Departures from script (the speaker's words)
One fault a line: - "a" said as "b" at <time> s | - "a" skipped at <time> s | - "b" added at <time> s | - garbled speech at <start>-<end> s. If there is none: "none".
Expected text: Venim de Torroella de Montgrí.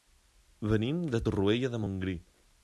none